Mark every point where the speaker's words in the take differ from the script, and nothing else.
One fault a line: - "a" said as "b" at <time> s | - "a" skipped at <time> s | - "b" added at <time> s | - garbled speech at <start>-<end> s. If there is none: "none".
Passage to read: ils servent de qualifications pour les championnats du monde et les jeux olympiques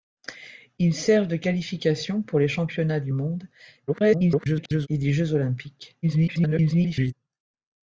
- garbled speech at 3.9-4.9 s
- garbled speech at 6.0-7.1 s